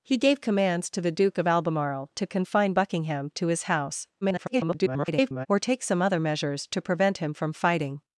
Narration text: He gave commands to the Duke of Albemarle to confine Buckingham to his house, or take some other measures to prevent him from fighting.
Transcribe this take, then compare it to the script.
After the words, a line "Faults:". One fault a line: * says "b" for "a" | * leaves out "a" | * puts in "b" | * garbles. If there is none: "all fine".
He gave commands to the Duke of Albemarle to confine Buckingham to his house, [garbled] or take some other measures to prevent him from fighting.
Faults:
* garbles